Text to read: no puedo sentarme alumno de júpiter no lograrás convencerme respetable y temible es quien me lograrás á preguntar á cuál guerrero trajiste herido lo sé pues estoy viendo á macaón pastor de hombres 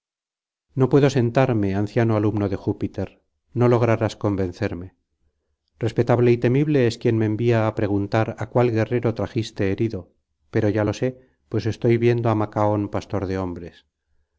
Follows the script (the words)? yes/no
no